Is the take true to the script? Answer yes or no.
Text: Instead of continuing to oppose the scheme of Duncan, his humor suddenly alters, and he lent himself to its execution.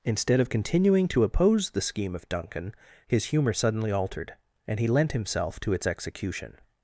no